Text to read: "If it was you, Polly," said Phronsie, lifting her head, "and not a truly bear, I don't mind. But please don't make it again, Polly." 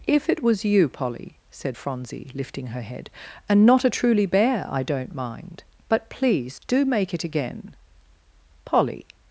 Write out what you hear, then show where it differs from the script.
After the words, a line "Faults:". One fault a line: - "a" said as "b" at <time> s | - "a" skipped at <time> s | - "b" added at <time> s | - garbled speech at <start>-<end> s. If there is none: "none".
"If it was you, Polly," said Phronsie, lifting her head, "and not a truly bear, I don't mind. But please do make it again, Polly."
Faults:
- "don't" said as "do" at 6.7 s